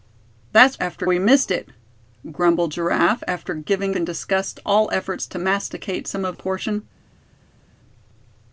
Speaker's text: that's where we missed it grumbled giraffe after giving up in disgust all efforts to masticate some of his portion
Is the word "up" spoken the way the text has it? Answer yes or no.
no